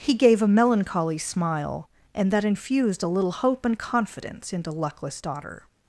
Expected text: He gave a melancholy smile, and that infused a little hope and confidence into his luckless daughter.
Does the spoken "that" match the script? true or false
true